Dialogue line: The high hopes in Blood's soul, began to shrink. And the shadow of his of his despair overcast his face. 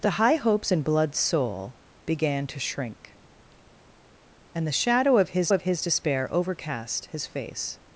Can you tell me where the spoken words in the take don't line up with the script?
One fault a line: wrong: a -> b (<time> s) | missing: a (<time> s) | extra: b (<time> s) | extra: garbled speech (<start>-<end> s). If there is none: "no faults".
no faults